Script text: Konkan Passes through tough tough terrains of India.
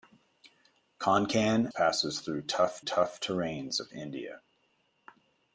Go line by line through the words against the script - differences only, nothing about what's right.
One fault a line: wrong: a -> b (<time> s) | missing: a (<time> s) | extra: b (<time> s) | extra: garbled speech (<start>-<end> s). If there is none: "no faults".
no faults